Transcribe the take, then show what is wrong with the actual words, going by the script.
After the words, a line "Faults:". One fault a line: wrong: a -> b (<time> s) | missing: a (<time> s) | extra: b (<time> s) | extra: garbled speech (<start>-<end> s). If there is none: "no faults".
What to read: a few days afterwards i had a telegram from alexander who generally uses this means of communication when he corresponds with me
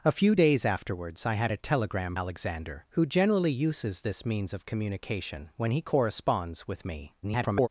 a few days afterwards i had a telegram alexander who generally uses this means of communication when he corresponds with me [garbled]
Faults:
missing: from (2.1 s)
extra: garbled speech (7.2-7.7 s)